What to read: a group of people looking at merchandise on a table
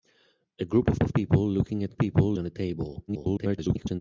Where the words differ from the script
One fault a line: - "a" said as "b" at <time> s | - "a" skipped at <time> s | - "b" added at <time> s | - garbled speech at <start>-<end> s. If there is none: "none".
- "of" added at 1.0 s
- "merchandise" said as "people" at 2.0 s
- garbled speech at 3.1-4.0 s